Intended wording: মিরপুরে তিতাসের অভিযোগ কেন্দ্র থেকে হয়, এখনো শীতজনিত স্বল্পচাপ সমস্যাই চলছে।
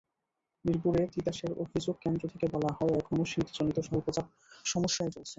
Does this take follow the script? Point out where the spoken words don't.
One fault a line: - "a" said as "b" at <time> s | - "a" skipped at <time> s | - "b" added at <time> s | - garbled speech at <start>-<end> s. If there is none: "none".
- "বলা" added at 2.5 s